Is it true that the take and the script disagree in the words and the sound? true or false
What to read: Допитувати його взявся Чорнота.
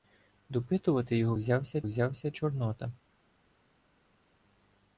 true